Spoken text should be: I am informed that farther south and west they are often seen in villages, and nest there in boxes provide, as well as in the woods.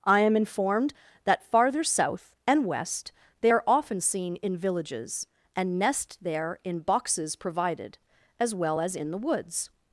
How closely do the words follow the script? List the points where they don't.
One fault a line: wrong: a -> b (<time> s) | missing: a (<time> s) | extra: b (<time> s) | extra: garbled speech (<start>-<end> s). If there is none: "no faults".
wrong: provide -> provided (7.4 s)